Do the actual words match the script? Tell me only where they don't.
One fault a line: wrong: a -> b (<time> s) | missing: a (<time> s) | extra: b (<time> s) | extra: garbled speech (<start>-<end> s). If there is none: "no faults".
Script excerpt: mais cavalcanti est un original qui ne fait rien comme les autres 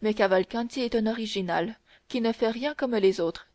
no faults